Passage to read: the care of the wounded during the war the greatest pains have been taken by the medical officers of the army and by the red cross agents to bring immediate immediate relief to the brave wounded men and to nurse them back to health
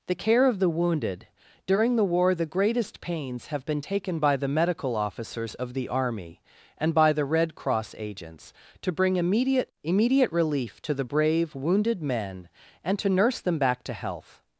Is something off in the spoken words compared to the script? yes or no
no